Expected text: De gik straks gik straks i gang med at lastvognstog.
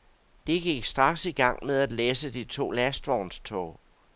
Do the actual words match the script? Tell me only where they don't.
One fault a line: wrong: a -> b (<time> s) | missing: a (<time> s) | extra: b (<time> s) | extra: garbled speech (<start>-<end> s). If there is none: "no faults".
missing: gik straks (1.2 s)
extra: læsse de to (1.9 s)